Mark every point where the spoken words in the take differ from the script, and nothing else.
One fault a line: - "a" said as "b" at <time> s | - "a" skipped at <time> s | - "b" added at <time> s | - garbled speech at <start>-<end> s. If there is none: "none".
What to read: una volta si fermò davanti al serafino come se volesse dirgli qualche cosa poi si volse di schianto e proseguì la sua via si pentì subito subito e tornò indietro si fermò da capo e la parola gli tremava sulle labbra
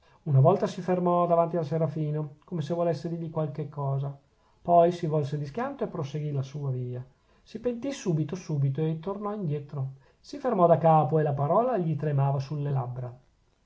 none